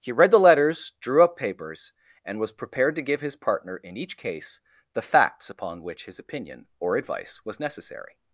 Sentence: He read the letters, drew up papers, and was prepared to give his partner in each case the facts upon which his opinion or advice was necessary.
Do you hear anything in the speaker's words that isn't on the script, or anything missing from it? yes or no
no